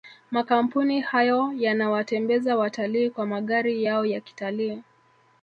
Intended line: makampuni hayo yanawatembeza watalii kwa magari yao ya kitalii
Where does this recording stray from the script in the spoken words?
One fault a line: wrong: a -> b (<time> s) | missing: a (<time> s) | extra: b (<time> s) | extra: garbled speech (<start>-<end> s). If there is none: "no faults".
no faults